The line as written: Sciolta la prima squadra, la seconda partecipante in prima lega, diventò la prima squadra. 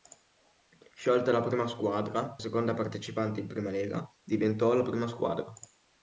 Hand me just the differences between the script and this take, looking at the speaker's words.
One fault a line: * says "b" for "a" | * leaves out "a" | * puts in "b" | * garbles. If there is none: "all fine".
* leaves out "la"